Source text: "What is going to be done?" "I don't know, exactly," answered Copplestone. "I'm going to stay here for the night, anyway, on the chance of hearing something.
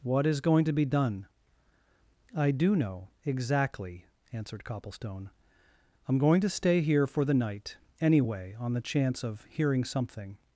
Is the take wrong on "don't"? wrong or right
wrong